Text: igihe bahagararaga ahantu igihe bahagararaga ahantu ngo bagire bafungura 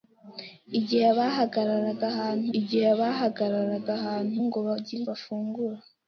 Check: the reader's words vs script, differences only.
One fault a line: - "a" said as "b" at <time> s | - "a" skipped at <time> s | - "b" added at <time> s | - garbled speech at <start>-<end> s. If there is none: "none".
none